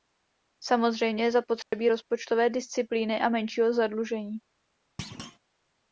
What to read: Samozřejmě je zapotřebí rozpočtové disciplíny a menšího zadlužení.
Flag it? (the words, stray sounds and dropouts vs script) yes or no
yes